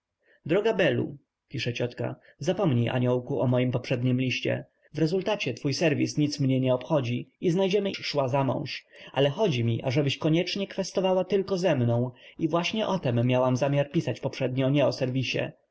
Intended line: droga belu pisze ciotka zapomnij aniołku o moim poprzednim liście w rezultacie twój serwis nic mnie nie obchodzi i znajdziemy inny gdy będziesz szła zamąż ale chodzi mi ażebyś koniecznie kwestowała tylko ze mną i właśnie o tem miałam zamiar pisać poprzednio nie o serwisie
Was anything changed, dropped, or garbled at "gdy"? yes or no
yes